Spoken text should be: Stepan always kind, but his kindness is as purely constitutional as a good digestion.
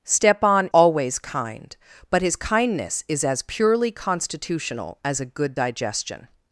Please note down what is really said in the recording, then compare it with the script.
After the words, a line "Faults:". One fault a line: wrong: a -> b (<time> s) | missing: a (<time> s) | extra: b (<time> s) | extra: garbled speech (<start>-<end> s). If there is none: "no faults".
Stepan always kind, but his kindness is as purely constitutional as a good digestion.
Faults:
no faults